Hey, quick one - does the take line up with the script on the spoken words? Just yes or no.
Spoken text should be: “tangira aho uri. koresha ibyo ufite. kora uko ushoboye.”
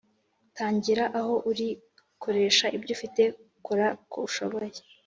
yes